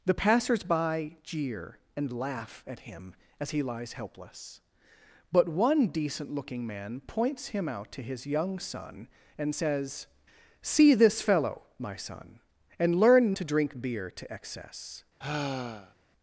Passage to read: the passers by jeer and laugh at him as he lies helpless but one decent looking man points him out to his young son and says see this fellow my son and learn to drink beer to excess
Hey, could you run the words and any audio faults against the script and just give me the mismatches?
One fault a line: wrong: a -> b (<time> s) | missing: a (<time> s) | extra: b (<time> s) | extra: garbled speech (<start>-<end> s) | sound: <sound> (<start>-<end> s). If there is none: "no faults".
sound: sigh (15.2-15.9 s)